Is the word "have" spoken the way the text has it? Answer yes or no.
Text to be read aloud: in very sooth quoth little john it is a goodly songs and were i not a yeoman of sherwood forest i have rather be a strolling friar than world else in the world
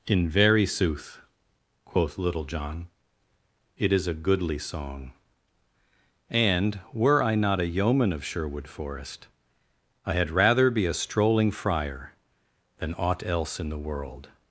no